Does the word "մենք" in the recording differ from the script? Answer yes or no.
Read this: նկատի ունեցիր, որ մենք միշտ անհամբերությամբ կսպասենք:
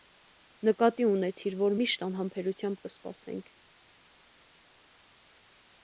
yes